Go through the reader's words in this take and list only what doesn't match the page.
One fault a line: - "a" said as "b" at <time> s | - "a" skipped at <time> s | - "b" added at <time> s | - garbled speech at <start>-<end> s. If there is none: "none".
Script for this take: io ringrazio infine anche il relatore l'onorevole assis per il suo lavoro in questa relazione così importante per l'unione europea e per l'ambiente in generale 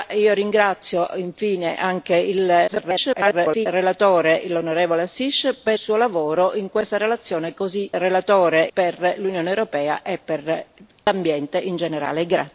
- garbled speech at 2.7-3.7 s
- "il" skipped at 5.8 s
- "importante" said as "relatore" at 8.0 s